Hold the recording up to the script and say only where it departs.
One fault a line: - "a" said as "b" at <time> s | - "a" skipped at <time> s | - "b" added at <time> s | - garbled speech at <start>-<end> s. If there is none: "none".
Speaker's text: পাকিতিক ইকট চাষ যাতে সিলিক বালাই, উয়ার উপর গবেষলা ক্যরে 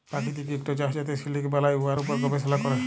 none